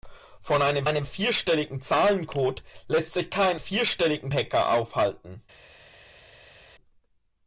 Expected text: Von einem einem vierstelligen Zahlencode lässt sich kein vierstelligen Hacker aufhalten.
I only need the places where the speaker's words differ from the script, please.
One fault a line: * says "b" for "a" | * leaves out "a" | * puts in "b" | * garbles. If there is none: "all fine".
all fine